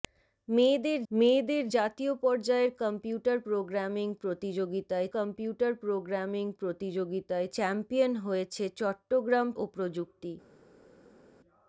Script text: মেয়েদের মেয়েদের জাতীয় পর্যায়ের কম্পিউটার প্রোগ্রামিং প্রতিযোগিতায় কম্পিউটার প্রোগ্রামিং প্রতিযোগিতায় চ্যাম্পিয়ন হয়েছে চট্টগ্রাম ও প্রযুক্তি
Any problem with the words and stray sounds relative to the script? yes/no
no